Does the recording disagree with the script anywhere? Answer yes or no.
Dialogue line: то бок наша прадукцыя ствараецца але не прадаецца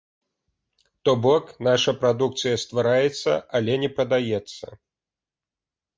no